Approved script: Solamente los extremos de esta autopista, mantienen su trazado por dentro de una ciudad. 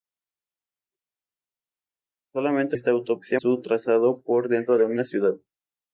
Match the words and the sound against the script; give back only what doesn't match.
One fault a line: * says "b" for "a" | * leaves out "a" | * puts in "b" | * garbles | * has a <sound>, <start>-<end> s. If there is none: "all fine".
* leaves out "los extremos de"
* leaves out "mantienen"